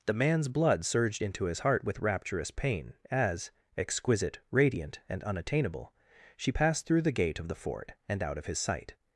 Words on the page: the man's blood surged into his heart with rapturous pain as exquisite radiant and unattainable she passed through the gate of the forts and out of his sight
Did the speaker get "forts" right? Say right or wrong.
wrong